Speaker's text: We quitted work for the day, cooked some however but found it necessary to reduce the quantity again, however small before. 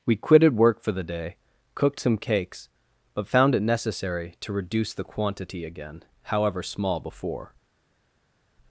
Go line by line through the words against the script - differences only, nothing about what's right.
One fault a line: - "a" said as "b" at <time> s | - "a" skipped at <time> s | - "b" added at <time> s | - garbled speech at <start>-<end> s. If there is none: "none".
- "however" said as "cakes" at 2.2 s